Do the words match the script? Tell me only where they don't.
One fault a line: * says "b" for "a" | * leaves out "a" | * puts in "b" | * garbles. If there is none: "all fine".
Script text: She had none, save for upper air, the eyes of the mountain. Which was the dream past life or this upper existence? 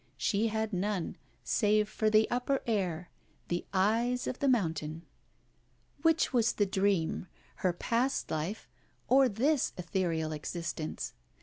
* puts in "the"
* puts in "her"
* says "ethereal" for "upper"